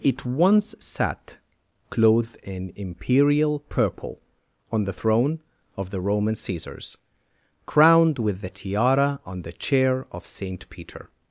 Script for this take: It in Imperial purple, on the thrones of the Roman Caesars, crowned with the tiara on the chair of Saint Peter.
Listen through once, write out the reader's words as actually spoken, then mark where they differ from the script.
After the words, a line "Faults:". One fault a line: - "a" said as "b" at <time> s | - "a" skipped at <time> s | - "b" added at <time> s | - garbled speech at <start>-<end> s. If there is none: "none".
It once sat, clothed in Imperial purple, on the throne of the Roman Caesars, crowned with the tiara on the chair of Saint Peter.
Faults:
- "once sat clothed" added at 0.2 s
- "thrones" said as "throne" at 4.9 s